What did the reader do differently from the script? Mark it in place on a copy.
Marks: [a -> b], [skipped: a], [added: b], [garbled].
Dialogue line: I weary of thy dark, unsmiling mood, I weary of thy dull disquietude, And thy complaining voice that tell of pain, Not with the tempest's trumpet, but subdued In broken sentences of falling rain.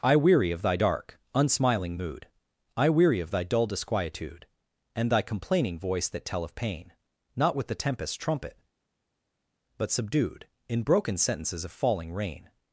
I weary of thy dark, unsmiling mood, I weary of thy dull disquietude, And thy complaining voice that tell of pain, Not with the tempest's trumpet, but subdued In broken sentences of falling rain.